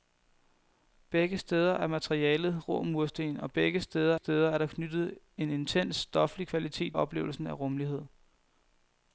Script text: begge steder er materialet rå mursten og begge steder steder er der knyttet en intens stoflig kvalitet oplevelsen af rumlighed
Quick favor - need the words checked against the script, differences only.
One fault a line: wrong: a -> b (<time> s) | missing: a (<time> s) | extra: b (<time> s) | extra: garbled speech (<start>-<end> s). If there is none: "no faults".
no faults